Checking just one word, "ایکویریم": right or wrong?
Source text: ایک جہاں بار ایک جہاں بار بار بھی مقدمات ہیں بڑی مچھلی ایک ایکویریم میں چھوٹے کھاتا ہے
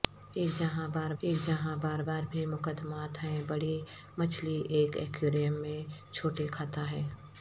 right